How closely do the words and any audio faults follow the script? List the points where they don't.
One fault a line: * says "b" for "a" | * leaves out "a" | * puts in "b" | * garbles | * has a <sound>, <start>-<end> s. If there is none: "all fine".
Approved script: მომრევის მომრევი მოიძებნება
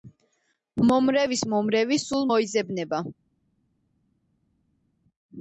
* puts in "სულ"